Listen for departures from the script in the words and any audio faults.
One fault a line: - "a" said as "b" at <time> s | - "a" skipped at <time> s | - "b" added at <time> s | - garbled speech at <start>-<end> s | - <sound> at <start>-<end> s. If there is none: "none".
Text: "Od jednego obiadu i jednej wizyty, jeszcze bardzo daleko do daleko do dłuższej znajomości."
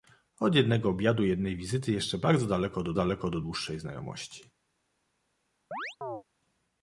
- chirp at 5.7-6.2 s